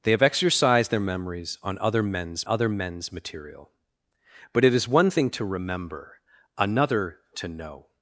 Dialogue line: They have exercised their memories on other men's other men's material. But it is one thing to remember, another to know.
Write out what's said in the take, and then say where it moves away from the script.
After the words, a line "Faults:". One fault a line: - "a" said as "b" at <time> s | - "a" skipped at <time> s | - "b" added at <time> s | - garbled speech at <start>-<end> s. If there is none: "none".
They have exercised their memories on other men's other men's material. But it is one thing to remember, another to know.
Faults:
none